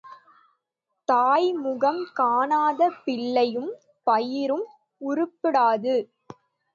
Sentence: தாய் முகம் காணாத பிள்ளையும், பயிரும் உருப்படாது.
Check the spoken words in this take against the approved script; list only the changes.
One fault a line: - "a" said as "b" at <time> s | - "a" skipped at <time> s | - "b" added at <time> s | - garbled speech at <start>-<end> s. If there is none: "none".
none